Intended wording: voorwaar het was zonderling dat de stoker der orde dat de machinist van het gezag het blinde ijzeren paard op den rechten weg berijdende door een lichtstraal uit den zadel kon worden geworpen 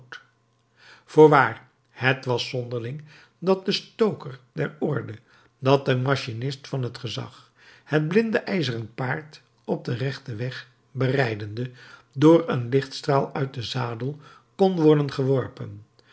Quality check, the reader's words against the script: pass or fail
pass